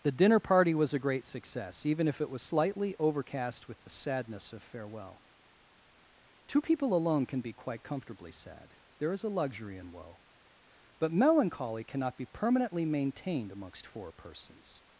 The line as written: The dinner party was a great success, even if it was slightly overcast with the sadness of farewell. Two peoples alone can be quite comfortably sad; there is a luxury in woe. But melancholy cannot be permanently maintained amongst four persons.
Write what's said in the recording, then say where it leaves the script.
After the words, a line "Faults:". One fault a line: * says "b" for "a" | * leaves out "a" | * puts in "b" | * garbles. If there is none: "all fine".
The dinner party was a great success, even if it was slightly overcast with the sadness of farewell. Two people alone can be quite comfortably sad; there is a luxury in woe. But melancholy cannot be permanently maintained amongst four persons.
Faults:
* says "people" for "peoples"